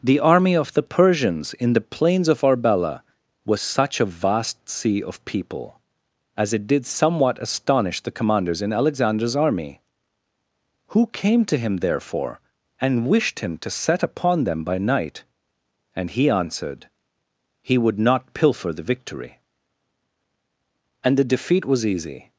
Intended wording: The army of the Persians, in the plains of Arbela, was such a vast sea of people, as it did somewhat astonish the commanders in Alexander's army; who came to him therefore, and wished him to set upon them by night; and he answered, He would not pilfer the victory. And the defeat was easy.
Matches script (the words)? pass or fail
pass